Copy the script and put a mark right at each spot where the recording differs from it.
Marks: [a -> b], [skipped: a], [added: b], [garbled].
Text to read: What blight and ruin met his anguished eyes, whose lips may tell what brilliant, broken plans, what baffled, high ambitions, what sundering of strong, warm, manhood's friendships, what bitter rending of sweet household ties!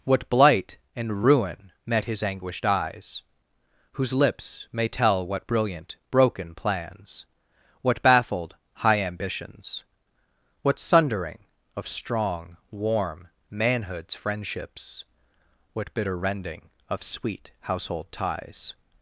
What blight and ruin met his anguished eyes, whose lips may tell what brilliant, broken plans, what baffled, high ambitions, what sundering of strong, warm, manhood's friendships, what bitter rending of sweet household ties!